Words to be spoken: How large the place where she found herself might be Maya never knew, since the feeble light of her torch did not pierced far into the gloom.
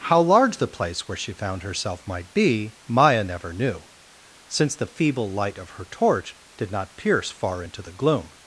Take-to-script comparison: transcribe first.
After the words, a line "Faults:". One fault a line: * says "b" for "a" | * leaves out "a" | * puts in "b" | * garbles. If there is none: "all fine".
How large the place where she found herself might be Maya never knew, since the feeble light of her torch did not pierce far into the gloom.
Faults:
* says "pierce" for "pierced"